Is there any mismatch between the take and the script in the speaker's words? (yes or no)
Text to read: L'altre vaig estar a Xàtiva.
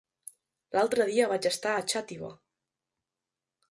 yes